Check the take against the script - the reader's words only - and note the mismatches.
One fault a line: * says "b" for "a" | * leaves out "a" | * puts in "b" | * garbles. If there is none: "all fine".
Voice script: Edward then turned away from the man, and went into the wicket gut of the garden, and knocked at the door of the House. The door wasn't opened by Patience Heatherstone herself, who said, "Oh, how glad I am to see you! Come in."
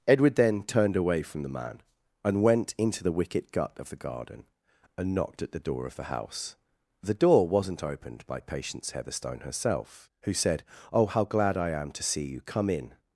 all fine